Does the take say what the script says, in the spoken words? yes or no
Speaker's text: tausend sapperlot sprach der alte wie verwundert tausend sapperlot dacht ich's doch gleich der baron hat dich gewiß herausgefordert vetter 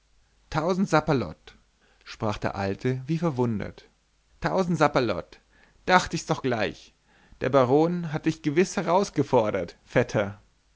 yes